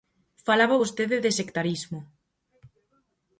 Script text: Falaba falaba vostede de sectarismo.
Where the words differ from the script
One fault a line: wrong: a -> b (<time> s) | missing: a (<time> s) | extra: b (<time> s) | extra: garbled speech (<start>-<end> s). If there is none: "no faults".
missing: falaba (0.8 s)